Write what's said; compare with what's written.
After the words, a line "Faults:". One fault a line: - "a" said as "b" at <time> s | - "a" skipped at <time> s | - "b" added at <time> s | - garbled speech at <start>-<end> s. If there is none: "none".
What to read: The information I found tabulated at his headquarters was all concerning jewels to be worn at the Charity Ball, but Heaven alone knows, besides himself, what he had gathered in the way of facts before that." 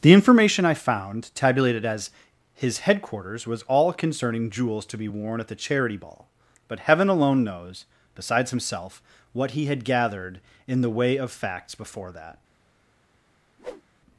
The information I found tabulated as his headquarters was all concerning jewels to be worn at the Charity Ball, but Heaven alone knows, besides himself, what he had gathered in the way of facts before that."
Faults:
- "at" said as "as" at 1.9 s